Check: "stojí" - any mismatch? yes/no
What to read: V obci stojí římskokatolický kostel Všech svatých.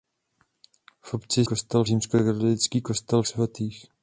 yes